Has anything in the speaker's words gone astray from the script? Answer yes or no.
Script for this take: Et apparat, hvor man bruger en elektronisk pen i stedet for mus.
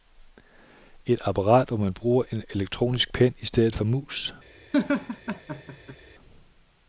no